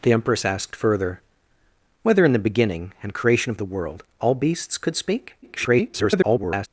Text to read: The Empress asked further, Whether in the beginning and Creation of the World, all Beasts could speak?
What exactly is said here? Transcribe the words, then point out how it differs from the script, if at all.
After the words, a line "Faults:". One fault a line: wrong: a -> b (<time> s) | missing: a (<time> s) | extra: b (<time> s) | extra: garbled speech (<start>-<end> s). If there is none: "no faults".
The Empress asked further, Whether in the beginning and Creation of the World, all Beasts could speak? [garbled]
Faults:
extra: garbled speech (5.4-6.7 s)